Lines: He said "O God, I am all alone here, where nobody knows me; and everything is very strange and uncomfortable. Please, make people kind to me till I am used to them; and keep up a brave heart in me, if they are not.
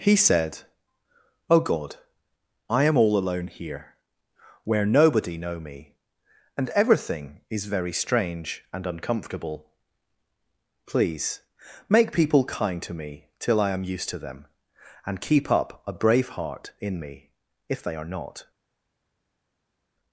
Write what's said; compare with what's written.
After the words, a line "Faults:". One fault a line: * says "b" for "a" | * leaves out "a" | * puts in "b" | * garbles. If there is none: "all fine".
He said "O God, I am all alone here, where nobody know me; and everything is very strange and uncomfortable. Please, make people kind to me till I am used to them; and keep up a brave heart in me, if they are not.
Faults:
* says "know" for "knows"